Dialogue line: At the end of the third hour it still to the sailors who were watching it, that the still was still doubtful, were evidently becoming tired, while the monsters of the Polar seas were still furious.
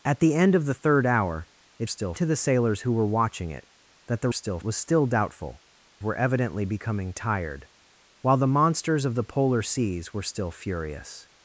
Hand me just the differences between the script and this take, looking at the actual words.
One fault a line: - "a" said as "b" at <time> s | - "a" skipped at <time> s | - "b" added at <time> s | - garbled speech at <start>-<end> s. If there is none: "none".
none